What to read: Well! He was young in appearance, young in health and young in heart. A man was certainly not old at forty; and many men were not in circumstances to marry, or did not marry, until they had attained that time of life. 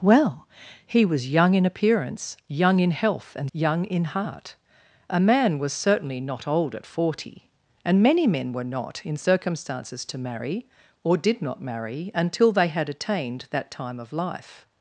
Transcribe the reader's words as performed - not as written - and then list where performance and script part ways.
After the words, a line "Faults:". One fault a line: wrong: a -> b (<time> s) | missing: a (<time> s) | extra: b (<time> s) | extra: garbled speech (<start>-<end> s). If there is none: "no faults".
Well! He was young in appearance, young in health and young in heart. A man was certainly not old at forty; and many men were not in circumstances to marry, or did not marry, until they had attained that time of life.
Faults:
no faults